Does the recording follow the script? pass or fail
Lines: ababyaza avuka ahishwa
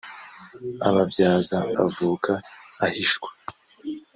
pass